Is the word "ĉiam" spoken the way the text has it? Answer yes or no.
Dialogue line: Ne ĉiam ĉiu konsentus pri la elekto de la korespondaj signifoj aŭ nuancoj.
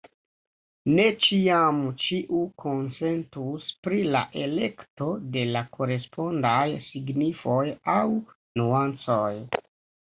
yes